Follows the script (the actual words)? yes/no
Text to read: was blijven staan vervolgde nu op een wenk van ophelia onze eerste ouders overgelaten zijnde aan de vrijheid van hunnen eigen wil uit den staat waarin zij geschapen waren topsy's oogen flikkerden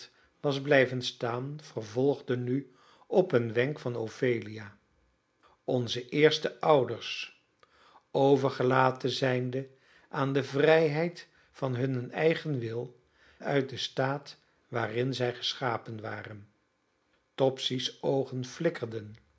yes